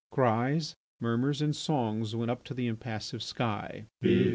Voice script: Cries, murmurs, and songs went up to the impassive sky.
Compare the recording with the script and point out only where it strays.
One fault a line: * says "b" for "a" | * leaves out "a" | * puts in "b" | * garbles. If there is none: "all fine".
all fine